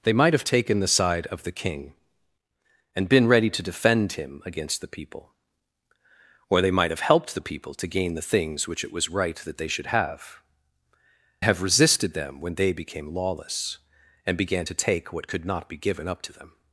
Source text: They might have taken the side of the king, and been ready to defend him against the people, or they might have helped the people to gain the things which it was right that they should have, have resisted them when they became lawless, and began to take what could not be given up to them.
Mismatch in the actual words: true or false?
false